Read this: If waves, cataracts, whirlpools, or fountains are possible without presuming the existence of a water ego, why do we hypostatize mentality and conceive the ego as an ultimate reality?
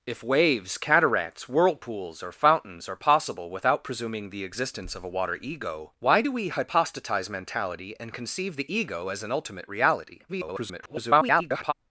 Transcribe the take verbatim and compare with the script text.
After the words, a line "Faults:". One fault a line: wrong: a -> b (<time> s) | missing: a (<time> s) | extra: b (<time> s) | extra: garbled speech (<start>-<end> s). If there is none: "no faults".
If waves, cataracts, whirlpools, or fountains are possible without presuming the existence of a water ego, why do we hypostatize mentality and conceive the ego as an ultimate reality? [garbled]
Faults:
extra: garbled speech (10.3-11.7 s)